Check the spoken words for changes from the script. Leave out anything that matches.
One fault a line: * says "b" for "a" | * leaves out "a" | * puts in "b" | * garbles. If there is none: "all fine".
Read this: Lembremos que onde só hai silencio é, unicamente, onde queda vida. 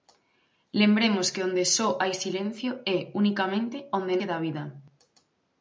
all fine